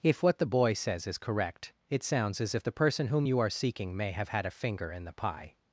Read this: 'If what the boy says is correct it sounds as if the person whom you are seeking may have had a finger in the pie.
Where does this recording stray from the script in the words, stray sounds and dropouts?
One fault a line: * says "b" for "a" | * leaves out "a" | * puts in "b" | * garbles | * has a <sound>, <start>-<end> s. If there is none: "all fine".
all fine